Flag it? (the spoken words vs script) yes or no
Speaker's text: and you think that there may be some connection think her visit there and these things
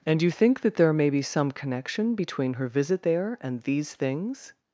yes